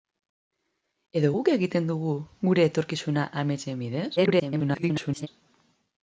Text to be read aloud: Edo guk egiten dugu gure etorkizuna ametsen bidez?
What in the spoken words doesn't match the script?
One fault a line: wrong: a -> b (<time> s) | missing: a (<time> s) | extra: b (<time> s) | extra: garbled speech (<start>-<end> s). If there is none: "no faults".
extra: garbled speech (4.2-5.3 s)